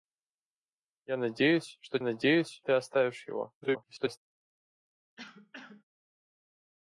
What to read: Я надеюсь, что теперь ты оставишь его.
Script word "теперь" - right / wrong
wrong